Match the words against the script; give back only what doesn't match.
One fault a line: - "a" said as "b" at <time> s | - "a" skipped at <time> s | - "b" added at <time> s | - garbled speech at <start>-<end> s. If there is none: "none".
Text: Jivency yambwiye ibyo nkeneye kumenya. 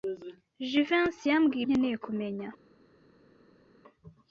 - "ibyo" skipped at 1.6 s